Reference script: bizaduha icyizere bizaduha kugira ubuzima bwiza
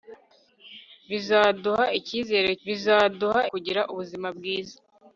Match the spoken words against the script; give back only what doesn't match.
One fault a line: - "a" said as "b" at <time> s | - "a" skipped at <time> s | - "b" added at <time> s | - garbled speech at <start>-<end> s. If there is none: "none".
none